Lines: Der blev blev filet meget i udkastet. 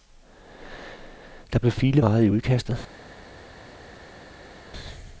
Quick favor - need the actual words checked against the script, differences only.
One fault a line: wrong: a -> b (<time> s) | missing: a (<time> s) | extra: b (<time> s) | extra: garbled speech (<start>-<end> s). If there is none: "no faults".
missing: blev (1.7 s)